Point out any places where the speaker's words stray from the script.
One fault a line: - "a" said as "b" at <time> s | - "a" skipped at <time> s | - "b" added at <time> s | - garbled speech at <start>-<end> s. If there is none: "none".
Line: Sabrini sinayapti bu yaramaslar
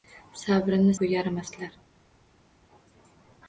- "sinayapti" skipped at 0.9 s